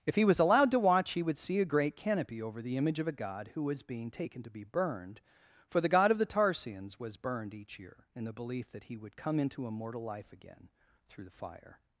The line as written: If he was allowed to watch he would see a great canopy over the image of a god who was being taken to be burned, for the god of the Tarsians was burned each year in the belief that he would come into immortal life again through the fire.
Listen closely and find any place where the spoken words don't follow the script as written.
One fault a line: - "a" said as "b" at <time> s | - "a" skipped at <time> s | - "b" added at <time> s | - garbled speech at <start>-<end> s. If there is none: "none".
none